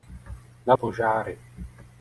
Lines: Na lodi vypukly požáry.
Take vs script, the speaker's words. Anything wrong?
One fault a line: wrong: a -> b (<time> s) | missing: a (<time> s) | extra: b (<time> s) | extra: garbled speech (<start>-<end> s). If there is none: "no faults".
missing: lodi vypukly (0.7 s)